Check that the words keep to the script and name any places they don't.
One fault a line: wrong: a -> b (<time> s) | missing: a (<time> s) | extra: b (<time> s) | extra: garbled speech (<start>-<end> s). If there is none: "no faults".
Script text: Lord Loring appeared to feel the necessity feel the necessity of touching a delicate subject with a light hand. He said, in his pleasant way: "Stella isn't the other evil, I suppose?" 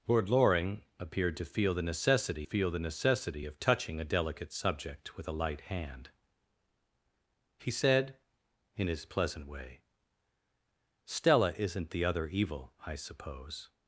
no faults